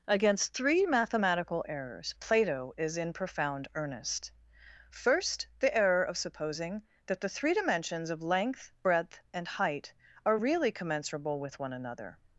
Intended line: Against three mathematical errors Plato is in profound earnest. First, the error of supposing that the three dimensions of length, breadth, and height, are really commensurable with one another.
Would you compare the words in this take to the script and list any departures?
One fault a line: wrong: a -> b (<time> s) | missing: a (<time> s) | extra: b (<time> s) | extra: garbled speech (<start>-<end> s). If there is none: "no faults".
no faults